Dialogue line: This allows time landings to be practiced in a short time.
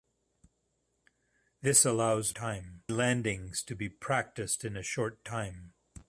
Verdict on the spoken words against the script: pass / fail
pass